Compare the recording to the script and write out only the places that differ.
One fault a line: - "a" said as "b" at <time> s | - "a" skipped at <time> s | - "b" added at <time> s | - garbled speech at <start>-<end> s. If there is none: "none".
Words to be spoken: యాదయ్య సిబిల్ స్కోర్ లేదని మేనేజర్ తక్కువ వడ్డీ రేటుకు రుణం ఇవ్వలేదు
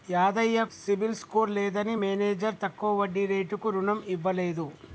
none